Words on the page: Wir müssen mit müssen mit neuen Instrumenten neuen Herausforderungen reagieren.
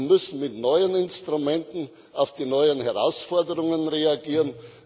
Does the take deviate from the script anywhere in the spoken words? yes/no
yes